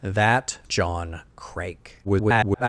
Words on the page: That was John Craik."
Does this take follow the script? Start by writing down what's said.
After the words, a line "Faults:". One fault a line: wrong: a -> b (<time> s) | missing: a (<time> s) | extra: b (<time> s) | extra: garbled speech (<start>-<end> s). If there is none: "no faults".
That John Craik." [garbled]
Faults:
missing: was (0.6 s)
extra: garbled speech (2.0-2.7 s)